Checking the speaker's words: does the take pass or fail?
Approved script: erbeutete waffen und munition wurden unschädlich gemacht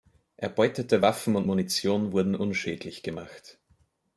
pass